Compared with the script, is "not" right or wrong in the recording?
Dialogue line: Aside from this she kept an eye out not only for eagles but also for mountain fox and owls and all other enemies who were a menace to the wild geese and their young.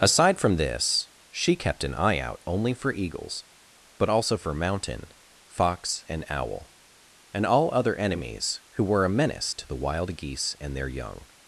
wrong